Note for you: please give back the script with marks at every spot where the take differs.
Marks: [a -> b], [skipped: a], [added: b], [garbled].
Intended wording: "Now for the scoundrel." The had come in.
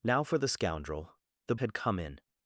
"Now for the scoundrel." The had come in.